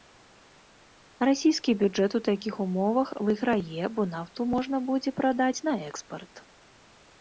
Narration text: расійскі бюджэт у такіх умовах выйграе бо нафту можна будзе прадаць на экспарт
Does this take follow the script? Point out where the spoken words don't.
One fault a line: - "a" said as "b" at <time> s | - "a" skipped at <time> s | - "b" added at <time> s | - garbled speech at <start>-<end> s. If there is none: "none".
none